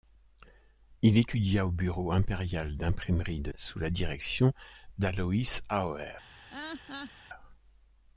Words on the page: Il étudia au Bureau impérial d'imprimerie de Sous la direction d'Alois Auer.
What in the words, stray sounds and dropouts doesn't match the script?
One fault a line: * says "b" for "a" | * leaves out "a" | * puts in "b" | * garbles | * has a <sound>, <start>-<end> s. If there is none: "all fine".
* has a laugh, 6.5-7.1 s